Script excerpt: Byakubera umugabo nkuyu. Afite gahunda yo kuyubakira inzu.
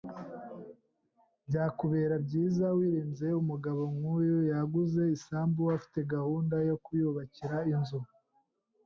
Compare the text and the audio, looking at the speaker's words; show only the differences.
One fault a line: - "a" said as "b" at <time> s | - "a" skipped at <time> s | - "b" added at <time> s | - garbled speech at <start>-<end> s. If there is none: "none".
- "byiza wirinze" added at 2.2 s
- "Yaguze isambu" added at 4.5 s